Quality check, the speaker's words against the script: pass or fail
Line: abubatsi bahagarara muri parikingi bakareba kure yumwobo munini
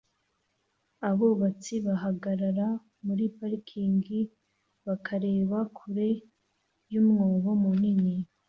pass